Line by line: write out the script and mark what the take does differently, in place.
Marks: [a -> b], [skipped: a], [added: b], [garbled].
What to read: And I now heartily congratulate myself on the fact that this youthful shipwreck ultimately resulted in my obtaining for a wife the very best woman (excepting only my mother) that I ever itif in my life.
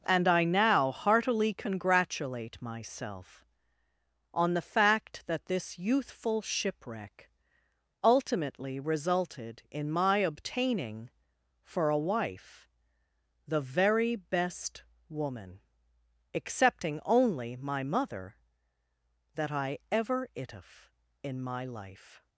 And I now heartily congratulate myself on the fact that this youthful shipwreck ultimately resulted in my obtaining for a wife the very best woman (excepting only my mother) that I ever itif in my life.